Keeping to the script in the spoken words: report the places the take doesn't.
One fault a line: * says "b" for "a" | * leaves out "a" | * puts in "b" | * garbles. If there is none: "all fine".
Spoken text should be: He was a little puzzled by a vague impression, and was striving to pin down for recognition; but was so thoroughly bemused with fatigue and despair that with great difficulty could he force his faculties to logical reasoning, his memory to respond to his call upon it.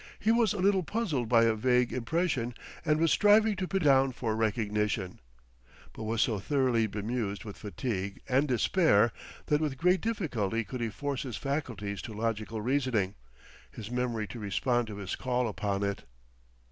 all fine